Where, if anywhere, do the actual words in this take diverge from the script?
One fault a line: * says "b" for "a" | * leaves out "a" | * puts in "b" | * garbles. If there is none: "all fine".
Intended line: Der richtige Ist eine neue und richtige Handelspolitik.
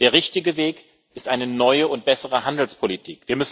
* puts in "Weg"
* says "bessere" for "richtige"